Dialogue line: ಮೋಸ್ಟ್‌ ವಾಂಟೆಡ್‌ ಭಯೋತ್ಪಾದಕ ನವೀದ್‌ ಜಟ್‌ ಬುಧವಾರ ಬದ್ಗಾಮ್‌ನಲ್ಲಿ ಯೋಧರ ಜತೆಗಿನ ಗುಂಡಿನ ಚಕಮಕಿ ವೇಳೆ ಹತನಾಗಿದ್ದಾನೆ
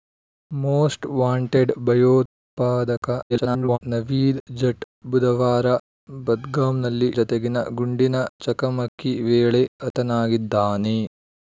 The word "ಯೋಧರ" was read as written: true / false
false